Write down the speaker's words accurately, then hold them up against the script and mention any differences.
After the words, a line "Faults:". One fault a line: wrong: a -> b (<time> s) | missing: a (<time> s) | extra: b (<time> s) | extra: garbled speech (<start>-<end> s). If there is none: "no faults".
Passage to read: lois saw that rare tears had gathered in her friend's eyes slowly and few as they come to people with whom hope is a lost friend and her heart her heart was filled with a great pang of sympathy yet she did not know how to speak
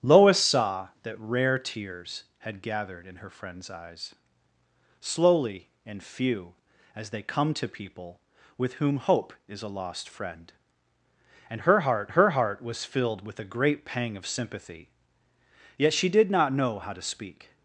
lois saw that rare tears had gathered in her friend's eyes slowly and few as they come to people with whom hope is a lost friend and her heart her heart was filled with a great pang of sympathy yet she did not know how to speak
Faults:
no faults